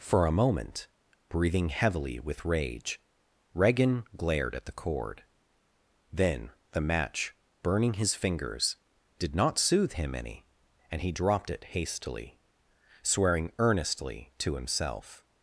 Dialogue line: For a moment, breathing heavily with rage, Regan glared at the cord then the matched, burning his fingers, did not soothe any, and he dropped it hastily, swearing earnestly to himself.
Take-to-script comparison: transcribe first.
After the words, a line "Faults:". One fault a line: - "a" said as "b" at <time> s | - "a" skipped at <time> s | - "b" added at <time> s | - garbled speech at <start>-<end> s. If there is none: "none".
For a moment, breathing heavily with rage, Regan glared at the cord then the match, burning his fingers, did not soothe him any, and he dropped it hastily, swearing earnestly to himself.
Faults:
- "matched" said as "match" at 6.8 s
- "him" added at 9.9 s